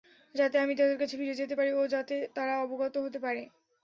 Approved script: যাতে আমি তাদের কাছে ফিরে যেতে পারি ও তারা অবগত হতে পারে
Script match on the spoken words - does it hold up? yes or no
no